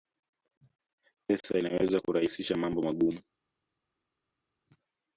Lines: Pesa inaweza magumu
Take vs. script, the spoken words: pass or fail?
fail